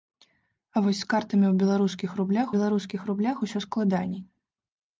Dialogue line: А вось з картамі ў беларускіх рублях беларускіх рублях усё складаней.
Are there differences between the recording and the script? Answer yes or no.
no